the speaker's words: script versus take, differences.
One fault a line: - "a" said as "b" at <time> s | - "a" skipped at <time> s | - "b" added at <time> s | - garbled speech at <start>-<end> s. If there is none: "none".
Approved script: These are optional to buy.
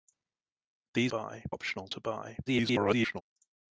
- "are" said as "buy" at 1.1 s
- garbled speech at 2.5-3.2 s